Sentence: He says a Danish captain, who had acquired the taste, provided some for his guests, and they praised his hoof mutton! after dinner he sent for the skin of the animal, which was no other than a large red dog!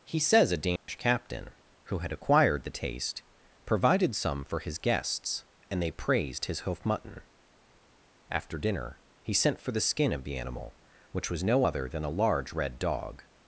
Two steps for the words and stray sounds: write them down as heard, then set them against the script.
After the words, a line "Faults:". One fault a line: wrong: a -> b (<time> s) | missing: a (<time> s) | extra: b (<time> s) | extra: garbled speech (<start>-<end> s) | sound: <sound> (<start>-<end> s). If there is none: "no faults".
He says a Danish captain, who had acquired the taste, provided some for his guests, and they praised his hoof mutton! after dinner he sent for the skin of the animal, which was no other than a large red dog!
Faults:
sound: dropout (0.8-0.9 s)